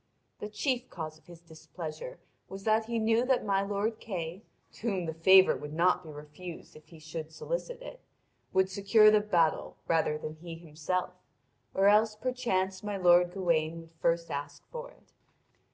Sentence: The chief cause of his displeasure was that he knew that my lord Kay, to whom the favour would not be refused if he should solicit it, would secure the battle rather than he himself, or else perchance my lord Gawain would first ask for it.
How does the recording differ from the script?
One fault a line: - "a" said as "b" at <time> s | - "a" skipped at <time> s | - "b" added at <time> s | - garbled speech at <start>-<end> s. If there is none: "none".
none